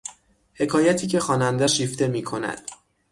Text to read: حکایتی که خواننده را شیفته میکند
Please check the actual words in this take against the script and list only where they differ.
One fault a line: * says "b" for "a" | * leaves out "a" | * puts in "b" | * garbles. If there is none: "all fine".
* leaves out "را"